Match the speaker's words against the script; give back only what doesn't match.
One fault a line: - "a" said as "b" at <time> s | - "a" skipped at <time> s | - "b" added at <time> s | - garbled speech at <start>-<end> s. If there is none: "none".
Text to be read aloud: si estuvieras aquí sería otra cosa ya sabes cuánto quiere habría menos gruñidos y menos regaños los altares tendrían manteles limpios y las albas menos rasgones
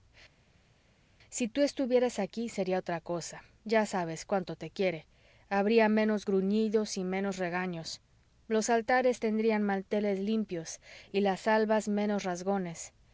- "tú" added at 1.5 s
- "te" added at 4.6 s